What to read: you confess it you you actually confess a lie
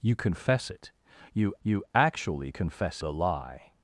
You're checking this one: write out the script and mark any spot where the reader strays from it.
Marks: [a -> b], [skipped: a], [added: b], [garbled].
you confess it you you actually confess a lie